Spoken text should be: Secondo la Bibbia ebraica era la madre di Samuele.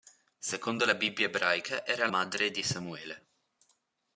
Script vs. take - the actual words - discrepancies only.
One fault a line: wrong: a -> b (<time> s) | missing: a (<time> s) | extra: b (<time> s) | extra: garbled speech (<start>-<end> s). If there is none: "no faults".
missing: la (2.1 s)